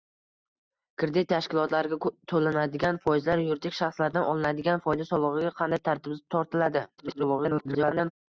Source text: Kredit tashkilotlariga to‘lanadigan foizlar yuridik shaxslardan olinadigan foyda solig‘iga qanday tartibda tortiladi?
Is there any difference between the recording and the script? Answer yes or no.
yes